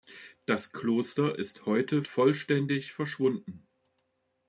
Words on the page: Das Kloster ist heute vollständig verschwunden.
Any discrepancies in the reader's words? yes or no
no